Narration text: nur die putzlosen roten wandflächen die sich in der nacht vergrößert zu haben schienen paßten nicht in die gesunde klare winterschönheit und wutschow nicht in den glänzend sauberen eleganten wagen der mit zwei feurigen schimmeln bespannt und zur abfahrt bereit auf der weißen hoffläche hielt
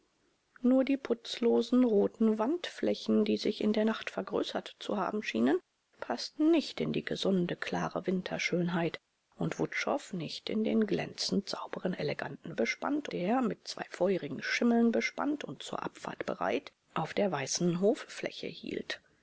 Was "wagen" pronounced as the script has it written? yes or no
no